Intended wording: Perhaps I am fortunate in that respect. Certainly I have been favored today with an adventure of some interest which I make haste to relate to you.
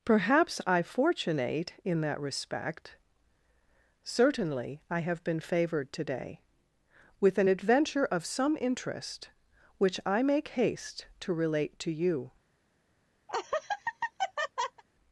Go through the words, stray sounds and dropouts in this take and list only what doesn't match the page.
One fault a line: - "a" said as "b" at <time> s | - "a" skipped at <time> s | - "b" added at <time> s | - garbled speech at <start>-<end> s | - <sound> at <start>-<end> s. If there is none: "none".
- "am" skipped at 0.8 s
- laugh at 13.3-14.8 s